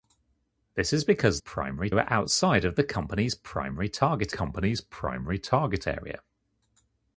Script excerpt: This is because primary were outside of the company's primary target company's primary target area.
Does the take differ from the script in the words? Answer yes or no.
no